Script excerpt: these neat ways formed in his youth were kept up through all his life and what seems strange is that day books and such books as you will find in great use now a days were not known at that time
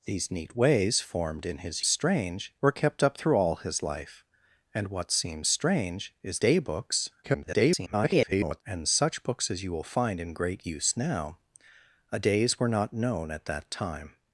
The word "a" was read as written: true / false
true